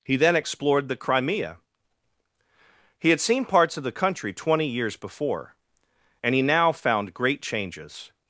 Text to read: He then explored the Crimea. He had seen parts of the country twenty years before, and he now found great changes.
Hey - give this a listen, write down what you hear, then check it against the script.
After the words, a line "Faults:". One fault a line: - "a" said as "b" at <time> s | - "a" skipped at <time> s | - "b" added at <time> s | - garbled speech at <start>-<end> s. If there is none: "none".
He then explored the Crimea. He had seen parts of the country twenty years before, and he now found great changes.
Faults:
none